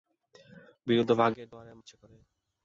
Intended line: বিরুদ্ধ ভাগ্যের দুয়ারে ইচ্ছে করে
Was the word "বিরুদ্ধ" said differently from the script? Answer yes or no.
no